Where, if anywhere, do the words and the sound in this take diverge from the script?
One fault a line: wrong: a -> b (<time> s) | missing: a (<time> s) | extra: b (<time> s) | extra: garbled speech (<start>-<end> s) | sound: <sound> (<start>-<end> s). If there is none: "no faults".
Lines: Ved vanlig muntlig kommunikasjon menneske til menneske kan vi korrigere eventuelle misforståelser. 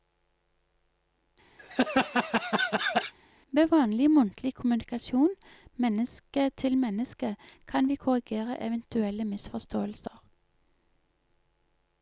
sound: laugh (1.6-3.1 s)